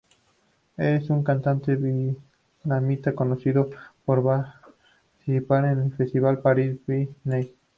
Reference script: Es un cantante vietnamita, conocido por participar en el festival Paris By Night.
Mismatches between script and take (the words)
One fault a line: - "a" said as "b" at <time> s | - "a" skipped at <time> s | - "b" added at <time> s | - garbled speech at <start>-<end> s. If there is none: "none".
none